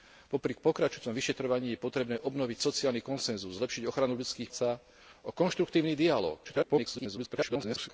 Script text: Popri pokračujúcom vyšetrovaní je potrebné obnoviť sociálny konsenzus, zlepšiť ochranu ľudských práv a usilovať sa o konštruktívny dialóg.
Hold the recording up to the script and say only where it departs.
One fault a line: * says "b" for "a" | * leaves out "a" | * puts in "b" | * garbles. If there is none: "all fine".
* leaves out "práv a usilovať"
* garbles